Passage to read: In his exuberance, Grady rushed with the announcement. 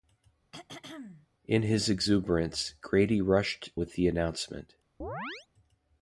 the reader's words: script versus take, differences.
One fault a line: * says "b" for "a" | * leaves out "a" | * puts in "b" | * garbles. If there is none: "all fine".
all fine